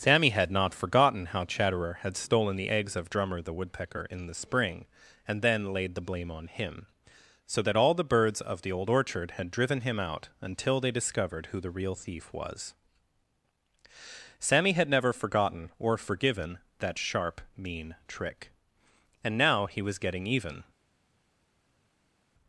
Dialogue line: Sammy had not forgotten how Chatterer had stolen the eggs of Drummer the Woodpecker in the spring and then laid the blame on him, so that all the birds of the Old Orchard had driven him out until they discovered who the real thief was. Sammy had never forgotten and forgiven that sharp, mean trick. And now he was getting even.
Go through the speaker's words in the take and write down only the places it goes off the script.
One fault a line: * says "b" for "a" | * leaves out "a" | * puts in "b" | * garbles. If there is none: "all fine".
* says "or" for "and"